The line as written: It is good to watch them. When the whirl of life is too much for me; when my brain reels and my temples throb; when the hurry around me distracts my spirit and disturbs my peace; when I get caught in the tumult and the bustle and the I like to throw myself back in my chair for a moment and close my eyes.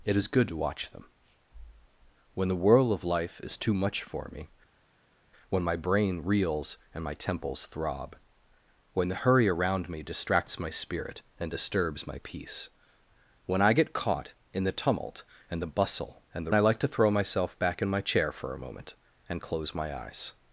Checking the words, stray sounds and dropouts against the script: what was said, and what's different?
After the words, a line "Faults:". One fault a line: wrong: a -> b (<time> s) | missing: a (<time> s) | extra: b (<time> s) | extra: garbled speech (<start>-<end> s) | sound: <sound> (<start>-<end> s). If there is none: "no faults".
It is good to watch them. When the whirl of life is too much for me; when my brain reels and my temples throb; when the hurry around me distracts my spirit and disturbs my peace; when I get caught in the tumult and the bustle and the I like to throw myself back in my chair for a moment and close my eyes.
Faults:
no faults